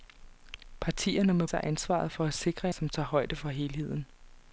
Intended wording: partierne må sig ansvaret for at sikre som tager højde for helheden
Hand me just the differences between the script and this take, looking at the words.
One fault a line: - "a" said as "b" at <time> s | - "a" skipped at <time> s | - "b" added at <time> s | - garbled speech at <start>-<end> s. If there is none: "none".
none